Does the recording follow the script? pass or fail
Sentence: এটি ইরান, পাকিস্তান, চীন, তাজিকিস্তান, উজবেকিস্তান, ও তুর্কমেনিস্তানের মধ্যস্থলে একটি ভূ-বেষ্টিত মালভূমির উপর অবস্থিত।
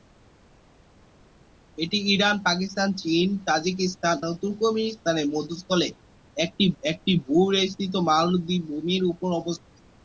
fail